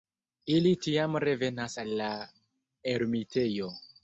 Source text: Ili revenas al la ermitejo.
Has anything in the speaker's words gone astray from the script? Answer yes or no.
yes